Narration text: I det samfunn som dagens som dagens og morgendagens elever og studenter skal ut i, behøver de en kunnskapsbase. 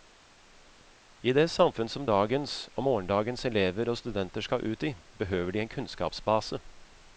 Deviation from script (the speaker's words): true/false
true